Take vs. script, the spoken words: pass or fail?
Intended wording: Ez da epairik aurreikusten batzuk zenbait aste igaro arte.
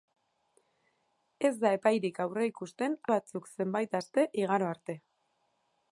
pass